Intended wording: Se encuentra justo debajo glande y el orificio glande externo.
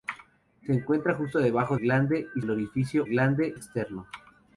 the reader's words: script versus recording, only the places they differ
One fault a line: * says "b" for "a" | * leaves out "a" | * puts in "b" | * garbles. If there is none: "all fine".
all fine